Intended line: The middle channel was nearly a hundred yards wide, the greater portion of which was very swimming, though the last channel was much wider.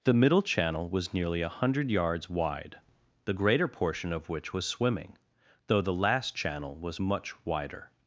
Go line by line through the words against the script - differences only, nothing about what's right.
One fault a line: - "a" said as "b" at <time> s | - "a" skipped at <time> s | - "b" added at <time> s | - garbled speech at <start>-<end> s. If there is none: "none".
- "very" skipped at 4.7 s